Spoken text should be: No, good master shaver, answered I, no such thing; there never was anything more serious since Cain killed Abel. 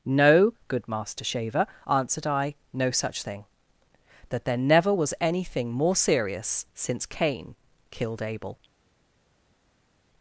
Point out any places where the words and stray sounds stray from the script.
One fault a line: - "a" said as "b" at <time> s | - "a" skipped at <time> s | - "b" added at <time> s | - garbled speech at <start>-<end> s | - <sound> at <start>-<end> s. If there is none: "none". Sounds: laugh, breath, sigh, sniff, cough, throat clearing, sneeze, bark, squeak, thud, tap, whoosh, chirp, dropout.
- "that" added at 4.3 s